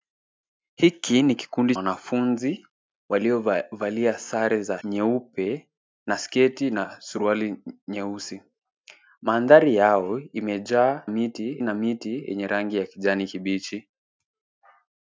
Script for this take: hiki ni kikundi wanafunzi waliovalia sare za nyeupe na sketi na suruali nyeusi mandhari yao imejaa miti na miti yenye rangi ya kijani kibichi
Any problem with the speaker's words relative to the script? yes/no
no